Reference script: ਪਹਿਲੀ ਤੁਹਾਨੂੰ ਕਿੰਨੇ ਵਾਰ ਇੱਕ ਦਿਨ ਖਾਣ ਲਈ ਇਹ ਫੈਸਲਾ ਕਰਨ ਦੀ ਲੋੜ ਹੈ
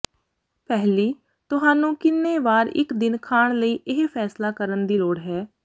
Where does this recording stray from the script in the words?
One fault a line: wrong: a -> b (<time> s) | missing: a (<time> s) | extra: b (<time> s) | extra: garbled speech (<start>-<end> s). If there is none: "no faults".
no faults